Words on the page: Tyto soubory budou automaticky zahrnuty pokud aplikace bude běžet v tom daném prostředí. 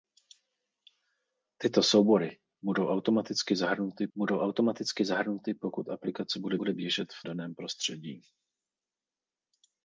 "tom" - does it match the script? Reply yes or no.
no